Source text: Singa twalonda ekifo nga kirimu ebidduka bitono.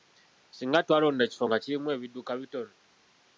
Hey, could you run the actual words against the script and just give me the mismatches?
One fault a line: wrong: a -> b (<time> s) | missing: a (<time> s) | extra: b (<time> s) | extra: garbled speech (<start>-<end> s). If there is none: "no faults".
no faults